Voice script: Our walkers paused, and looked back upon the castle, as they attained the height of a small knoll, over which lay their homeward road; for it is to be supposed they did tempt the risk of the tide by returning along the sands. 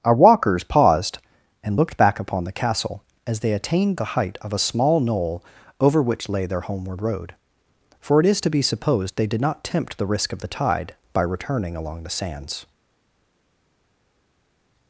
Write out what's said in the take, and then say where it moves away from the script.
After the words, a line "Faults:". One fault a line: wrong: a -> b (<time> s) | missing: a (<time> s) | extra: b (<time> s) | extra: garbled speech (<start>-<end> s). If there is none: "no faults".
Our walkers paused, and looked back upon the castle, as they attained the height of a small knoll, over which lay their homeward road; for it is to be supposed they did not tempt the risk of the tide by returning along the sands.
Faults:
extra: not (9.4 s)